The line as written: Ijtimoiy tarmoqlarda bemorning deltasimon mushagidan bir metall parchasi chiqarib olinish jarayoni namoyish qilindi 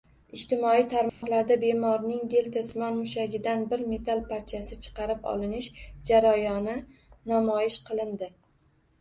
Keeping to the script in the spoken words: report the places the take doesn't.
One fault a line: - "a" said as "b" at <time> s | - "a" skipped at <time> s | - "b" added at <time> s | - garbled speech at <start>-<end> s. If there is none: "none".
none